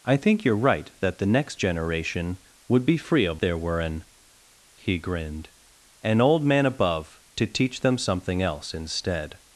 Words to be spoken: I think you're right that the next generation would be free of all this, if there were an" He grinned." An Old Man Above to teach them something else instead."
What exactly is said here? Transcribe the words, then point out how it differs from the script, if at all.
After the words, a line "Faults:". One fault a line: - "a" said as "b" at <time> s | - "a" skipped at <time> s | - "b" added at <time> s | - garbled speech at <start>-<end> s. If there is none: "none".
I think you're right that the next generation would be free of there were an" He grinned." An Old Man Above to teach them something else instead."
Faults:
- "all this if" skipped at 3.4 s